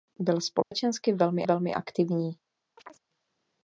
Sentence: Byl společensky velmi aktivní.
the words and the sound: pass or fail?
fail